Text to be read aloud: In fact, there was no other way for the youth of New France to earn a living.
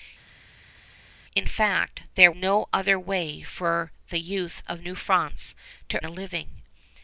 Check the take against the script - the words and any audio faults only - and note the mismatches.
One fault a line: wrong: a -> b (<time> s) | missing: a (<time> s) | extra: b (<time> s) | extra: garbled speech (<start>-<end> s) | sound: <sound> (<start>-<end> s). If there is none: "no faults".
missing: was (2.3 s)
missing: earn (6.0 s)